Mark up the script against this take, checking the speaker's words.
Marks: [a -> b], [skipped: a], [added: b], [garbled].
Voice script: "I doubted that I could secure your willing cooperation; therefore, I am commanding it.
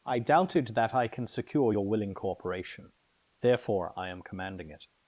"I doubted that I [could -> can] secure your willing cooperation; therefore, I am commanding it.